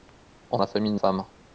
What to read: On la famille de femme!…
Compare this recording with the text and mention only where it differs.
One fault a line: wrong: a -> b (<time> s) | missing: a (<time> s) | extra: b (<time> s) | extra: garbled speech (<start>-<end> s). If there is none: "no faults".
no faults